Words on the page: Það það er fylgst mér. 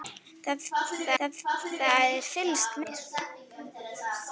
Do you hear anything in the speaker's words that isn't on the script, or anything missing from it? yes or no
no